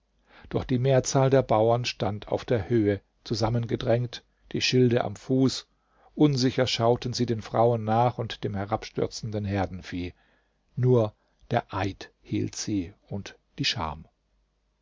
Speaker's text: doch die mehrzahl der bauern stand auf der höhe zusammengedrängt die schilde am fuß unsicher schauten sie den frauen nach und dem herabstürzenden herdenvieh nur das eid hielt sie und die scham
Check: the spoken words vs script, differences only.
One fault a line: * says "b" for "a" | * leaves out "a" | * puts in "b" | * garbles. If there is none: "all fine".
* says "der" for "das"